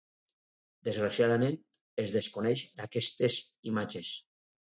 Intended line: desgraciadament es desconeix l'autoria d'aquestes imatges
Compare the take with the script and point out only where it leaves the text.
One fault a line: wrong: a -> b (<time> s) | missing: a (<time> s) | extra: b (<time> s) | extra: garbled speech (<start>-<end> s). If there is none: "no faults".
missing: l'autoria (2.6 s)